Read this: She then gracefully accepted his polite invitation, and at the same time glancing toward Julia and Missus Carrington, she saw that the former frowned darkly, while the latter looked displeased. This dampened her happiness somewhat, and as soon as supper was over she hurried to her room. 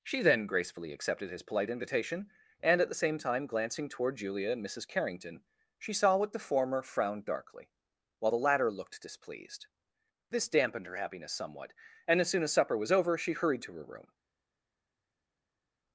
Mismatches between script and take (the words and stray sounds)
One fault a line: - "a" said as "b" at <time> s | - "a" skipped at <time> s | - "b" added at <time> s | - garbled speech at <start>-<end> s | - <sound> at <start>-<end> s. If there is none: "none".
- "that" said as "what" at 6.2 s